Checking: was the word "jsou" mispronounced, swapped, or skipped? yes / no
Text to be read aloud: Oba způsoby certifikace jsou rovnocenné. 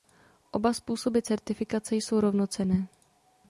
no